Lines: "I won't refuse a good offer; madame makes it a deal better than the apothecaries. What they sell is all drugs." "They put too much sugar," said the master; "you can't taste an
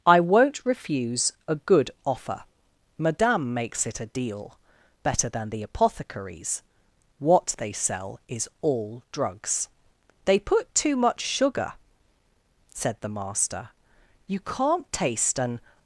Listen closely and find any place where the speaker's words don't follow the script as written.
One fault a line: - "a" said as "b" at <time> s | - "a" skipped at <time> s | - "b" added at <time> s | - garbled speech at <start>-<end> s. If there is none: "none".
none